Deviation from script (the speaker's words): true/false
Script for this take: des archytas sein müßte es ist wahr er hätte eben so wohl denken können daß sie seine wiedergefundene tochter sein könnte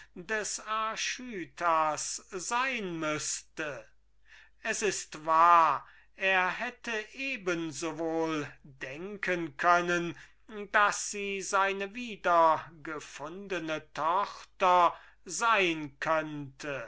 false